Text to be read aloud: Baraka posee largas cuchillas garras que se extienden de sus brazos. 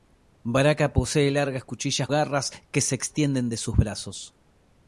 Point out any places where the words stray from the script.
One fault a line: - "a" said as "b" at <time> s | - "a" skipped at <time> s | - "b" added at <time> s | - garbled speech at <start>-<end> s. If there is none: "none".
none